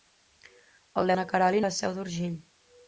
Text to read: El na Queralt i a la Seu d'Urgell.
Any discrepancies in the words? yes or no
no